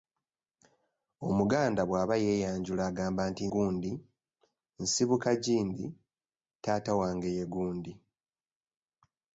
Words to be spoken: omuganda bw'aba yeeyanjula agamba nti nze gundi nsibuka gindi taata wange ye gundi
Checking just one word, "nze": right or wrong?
wrong